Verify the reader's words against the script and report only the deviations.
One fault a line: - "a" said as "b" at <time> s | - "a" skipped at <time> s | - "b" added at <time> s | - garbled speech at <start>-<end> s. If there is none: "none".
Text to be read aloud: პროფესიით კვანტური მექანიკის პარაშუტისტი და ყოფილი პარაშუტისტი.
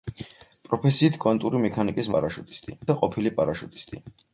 none